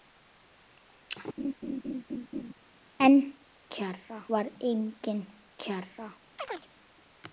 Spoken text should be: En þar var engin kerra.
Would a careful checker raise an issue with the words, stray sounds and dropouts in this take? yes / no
yes